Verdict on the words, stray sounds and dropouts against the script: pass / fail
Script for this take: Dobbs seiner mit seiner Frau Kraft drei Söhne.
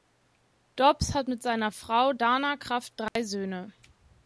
fail